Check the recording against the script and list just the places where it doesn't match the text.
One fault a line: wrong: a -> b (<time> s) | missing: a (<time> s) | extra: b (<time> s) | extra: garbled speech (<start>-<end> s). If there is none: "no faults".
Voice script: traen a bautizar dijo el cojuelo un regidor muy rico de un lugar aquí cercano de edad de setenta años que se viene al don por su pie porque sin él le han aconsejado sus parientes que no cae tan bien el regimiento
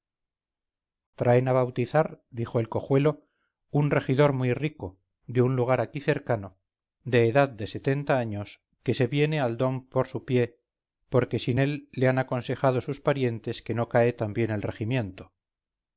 no faults